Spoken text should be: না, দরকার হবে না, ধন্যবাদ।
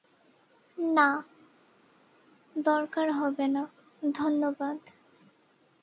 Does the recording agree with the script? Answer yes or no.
yes